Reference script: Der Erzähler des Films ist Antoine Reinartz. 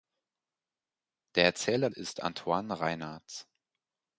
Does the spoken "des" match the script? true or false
false